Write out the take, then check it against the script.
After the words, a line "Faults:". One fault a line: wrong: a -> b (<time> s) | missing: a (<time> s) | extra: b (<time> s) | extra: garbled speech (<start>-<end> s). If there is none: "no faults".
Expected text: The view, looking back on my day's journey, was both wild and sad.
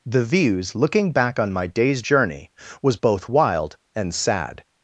The views, looking back on my day's journey, was both wild and sad.
Faults:
wrong: view -> views (0.2 s)